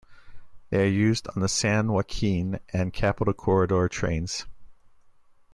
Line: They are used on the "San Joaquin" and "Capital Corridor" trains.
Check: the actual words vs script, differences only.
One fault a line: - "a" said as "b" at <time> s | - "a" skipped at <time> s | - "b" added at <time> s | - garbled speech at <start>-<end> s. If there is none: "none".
none